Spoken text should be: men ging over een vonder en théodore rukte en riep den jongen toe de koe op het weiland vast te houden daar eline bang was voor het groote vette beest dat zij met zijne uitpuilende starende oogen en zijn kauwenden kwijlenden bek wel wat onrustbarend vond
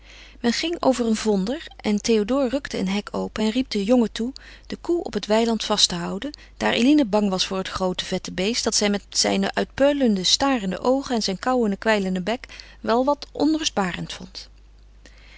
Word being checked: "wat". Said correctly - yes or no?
yes